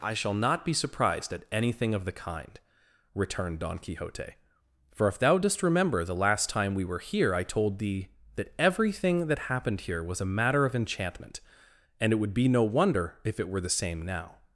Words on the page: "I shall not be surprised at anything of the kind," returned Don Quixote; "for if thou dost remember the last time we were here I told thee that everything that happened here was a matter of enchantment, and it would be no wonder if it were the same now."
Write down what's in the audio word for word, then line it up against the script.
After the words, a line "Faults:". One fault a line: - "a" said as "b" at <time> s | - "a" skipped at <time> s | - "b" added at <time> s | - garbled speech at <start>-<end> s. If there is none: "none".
"I shall not be surprised at anything of the kind," returned Don Quixote; "for if thou dost remember the last time we were here I told thee that everything that happened here was a matter of enchantment, and it would be no wonder if it were the same now."
Faults:
none